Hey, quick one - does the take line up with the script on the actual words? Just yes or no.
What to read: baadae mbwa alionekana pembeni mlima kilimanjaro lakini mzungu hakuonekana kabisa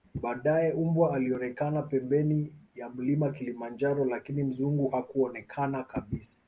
no